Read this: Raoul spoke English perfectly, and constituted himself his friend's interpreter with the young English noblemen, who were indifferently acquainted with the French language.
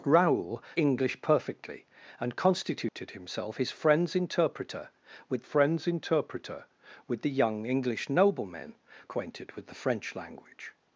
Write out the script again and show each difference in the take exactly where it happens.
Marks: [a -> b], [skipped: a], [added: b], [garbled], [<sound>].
Raoul [skipped: spoke] English perfectly, and constituted [dropout] himself his friend's interpreter with [added: friend's interpreter with] the young English noblemen, [skipped: who were indifferently] acquainted with the French language.